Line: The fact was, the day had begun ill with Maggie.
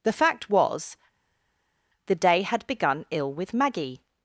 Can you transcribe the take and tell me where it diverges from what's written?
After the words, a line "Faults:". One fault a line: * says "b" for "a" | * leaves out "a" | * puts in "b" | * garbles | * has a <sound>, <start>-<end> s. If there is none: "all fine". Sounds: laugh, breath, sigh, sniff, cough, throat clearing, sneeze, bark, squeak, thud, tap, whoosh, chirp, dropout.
The fact was, the day had begun ill with Maggie.
Faults:
all fine